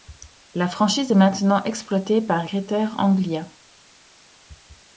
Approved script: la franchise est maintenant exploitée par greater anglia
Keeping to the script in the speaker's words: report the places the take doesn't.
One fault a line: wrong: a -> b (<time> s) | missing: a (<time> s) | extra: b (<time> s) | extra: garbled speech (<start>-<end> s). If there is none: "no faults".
no faults